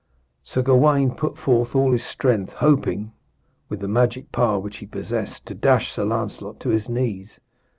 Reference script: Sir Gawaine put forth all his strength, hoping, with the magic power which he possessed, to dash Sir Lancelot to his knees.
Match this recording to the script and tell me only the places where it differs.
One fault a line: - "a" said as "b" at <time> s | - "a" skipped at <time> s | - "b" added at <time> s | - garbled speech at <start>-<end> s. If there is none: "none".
none